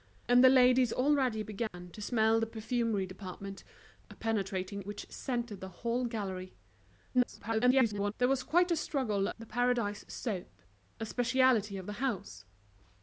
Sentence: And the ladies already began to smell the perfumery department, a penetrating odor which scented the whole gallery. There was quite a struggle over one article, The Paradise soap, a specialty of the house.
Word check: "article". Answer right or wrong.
wrong